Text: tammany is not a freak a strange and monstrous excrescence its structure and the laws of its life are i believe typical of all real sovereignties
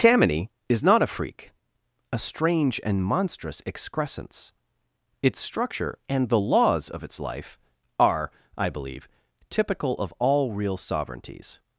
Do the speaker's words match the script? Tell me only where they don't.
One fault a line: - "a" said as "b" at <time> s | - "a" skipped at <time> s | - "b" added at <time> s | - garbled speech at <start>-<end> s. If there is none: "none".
none